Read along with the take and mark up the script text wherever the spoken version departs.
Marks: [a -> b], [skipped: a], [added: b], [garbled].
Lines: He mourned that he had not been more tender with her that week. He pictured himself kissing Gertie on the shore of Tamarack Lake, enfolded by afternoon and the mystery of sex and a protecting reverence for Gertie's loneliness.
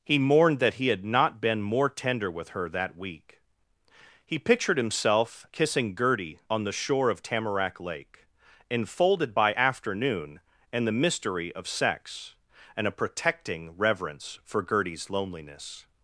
He mourned that he had not been more tender with her that week. He pictured himself kissing Gertie on the shore of Tamarack Lake, enfolded by afternoon and the mystery of sex and a protecting reverence for Gertie's loneliness.